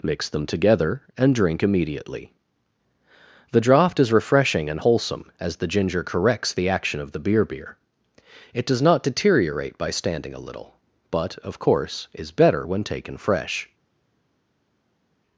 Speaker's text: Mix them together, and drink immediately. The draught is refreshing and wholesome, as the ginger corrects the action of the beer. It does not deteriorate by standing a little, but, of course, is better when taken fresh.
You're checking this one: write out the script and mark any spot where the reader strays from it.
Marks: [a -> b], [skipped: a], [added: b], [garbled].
Mix them together, and drink immediately. The draught is refreshing and wholesome, as the ginger corrects the action of the beer. [added: beer] It does not deteriorate by standing a little, but, of course, is better when taken fresh.